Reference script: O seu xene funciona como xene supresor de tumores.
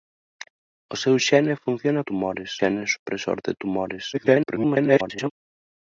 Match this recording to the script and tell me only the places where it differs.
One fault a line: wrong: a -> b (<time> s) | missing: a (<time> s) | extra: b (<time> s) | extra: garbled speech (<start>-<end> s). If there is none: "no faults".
wrong: como -> tumores (2.1 s)
extra: garbled speech (4.1-5.3 s)